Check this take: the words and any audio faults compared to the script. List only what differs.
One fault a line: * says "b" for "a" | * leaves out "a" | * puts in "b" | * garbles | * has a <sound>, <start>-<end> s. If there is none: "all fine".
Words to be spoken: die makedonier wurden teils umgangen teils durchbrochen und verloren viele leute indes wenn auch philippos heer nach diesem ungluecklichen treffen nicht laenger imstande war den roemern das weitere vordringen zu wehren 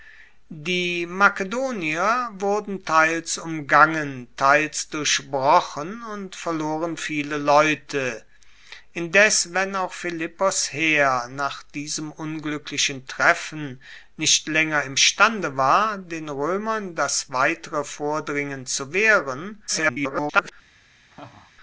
* garbles
* has a laugh, 21.1-21.5 s